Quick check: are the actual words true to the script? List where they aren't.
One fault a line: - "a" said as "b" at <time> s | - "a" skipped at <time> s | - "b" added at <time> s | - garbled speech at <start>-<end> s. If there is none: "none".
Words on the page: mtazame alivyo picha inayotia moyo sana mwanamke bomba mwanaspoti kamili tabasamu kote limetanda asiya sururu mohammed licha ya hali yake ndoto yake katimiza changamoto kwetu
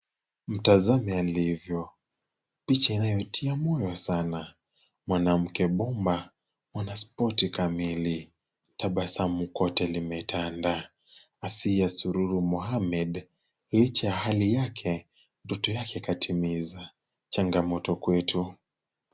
none